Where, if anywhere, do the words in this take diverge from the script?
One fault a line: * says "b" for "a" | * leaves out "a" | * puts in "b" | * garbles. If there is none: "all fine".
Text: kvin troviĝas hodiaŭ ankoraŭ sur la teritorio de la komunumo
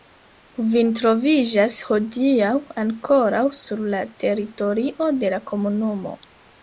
all fine